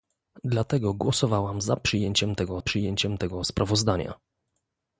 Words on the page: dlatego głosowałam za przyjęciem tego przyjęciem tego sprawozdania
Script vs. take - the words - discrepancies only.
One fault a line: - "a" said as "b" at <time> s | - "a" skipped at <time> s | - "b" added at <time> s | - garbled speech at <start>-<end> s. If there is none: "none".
none